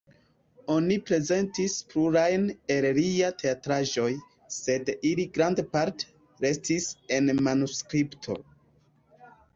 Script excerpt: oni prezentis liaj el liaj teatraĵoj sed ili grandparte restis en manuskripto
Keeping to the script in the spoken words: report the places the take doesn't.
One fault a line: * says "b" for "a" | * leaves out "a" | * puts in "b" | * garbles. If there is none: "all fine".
* says "plurajn" for "liaj"